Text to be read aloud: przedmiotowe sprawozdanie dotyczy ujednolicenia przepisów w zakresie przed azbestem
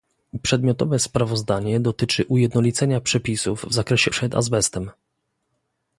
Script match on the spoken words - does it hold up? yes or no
yes